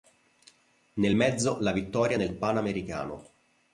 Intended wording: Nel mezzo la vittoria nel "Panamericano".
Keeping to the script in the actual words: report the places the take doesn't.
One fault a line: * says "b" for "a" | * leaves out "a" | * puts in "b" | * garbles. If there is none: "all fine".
all fine